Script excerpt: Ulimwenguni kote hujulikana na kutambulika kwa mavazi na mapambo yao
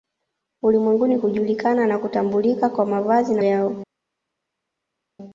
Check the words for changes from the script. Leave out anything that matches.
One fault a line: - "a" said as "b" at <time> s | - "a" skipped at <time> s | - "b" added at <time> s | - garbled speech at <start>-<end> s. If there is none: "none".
- "kote" skipped at 1.2 s
- "mapambo" skipped at 3.4 s